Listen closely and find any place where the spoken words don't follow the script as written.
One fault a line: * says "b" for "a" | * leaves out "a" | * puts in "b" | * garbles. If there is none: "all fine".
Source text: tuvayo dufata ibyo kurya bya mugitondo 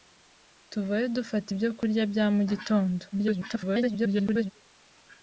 * garbles